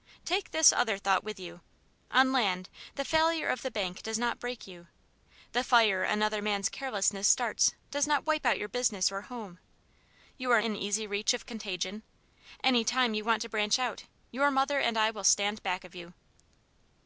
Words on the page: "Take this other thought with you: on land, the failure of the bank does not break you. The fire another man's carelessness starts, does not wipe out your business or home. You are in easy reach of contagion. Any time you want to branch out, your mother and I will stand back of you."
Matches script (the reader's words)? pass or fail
pass